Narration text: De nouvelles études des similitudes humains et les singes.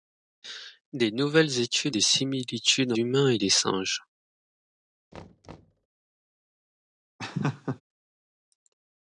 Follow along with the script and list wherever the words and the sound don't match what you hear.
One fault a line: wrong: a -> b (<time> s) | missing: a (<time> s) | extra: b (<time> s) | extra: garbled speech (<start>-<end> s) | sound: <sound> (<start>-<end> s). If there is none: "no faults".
sound: thud (5.1-5.9 s)
sound: laugh (7.2-7.8 s)